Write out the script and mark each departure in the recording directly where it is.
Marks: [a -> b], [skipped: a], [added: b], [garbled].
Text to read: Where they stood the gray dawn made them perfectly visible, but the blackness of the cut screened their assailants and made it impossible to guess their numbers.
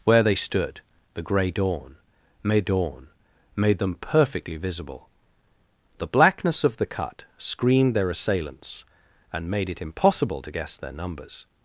Where they stood the gray dawn made [added: dawn made] them perfectly visible, [skipped: but] the blackness of the cut screened their assailants and made it impossible to guess their numbers.